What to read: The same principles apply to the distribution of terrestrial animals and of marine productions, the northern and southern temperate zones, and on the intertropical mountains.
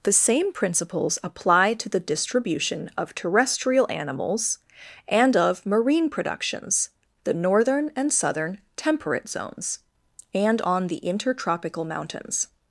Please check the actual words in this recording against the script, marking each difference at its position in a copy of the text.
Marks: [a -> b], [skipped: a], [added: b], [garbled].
The same principles apply to the distribution of terrestrial animals and of marine productions, the northern and southern temperate zones, and on the intertropical mountains.